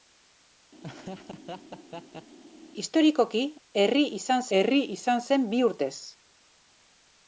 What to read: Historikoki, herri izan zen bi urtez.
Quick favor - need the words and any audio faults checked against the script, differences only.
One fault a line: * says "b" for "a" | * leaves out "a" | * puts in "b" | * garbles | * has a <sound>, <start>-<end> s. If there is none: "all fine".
* has a laugh, 0.8-2.4 s
* puts in "herri izan"